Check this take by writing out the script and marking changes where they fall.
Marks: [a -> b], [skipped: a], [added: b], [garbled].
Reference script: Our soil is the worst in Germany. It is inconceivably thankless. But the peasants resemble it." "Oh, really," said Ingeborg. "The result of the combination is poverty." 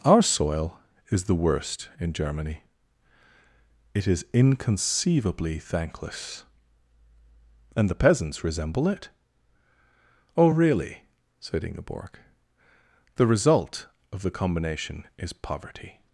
Our soil is the worst in Germany. It is inconceivably thankless. [But -> And] the peasants resemble it." "Oh, really," said Ingeborg. "The result of the combination is poverty."